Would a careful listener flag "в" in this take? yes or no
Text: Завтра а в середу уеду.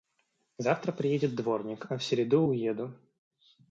no